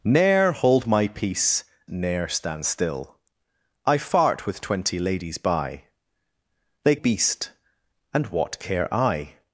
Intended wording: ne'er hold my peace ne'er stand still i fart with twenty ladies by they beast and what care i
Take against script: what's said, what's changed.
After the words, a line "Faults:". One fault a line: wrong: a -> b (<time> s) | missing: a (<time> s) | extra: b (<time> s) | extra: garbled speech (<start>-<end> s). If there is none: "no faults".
ne'er hold my peace ne'er stand still i fart with twenty ladies by they beast and what care i
Faults:
no faults